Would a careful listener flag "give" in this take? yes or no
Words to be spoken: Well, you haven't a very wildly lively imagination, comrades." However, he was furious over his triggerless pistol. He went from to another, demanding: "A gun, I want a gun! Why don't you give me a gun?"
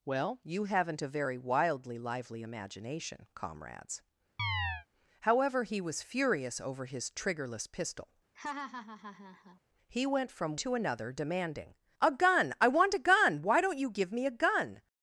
no